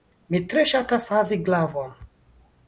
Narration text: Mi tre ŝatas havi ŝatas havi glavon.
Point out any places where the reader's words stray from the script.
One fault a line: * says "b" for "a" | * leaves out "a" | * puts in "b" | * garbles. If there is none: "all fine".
* leaves out "ŝatas havi"